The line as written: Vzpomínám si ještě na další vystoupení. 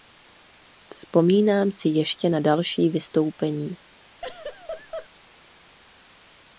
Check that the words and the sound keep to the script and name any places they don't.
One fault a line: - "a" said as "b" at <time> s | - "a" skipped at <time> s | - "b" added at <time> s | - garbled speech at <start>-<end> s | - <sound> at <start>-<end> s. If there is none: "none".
- laugh at 4.2-5.1 s